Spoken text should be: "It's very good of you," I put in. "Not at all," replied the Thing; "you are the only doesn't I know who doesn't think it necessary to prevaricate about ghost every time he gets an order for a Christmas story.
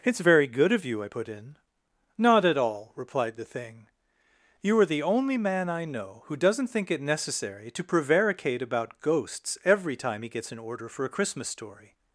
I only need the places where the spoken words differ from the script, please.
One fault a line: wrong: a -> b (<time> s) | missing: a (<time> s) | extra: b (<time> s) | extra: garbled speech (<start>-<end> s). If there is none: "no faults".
wrong: doesn't -> man (5.4 s)
wrong: ghost -> ghosts (9.0 s)